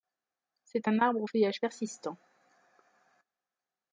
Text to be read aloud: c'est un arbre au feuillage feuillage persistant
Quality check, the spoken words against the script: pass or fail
fail